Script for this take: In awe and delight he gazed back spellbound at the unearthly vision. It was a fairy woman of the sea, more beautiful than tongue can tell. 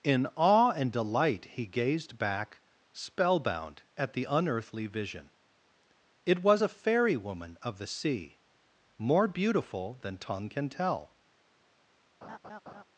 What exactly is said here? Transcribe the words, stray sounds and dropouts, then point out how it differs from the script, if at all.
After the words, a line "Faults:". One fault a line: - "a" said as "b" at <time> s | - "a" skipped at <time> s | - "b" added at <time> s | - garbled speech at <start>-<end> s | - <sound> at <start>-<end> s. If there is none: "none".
In awe and delight he gazed back spellbound at the unearthly vision. It was a fairy woman of the sea, more beautiful than tongue can tell.
Faults:
- laugh at 12.2-12.8 s